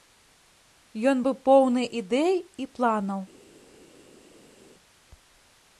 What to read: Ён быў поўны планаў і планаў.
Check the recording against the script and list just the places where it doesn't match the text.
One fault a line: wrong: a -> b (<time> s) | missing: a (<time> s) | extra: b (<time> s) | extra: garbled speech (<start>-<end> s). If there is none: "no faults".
wrong: планаў -> ідэй (2.0 s)